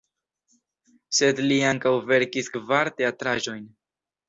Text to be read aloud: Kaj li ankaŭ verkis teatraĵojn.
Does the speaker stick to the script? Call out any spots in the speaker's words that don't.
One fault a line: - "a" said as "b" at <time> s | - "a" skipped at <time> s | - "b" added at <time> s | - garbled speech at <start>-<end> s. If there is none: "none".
- "Kaj" said as "Sed" at 1.2 s
- "kvar" added at 2.6 s